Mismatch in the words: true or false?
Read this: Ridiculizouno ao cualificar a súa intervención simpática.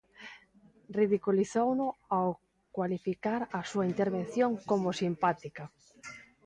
true